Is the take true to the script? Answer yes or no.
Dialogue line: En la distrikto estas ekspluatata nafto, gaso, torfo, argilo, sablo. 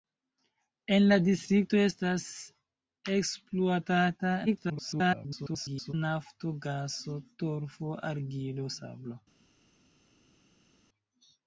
no